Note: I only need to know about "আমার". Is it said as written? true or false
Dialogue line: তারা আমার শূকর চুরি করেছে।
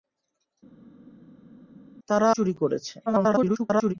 false